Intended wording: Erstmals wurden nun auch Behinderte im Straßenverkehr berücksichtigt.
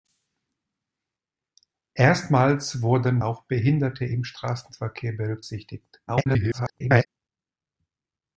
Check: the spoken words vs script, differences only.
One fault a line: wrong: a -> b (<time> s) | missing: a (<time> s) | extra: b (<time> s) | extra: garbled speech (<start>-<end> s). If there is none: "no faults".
missing: nun (3.2 s)
extra: garbled speech (6.1-7.1 s)